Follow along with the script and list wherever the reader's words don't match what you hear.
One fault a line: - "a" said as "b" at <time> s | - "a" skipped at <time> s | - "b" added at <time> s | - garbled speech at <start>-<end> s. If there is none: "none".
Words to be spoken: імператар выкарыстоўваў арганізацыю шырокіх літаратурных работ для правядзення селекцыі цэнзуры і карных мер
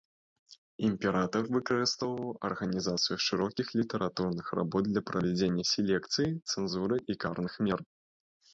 none